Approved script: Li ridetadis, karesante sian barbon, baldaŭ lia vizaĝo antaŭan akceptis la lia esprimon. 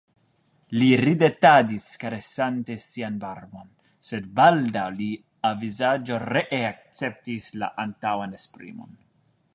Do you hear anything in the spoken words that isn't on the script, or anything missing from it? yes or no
yes